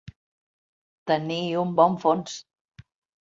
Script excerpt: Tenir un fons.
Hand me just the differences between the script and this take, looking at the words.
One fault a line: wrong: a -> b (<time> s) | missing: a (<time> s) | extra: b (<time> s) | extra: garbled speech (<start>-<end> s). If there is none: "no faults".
extra: bon (1.8 s)